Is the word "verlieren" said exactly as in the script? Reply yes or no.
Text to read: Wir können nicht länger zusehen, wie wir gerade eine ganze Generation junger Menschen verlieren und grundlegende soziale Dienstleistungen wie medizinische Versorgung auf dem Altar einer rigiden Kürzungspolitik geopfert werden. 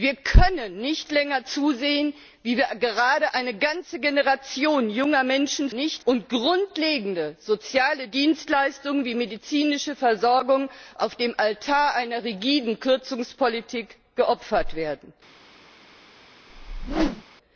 no